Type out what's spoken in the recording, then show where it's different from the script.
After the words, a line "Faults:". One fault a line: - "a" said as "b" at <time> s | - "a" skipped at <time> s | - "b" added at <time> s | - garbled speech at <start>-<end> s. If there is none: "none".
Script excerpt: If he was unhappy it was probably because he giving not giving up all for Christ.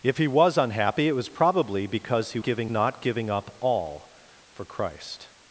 If he was unhappy it was probably because he giving not giving up all for Christ.
Faults:
none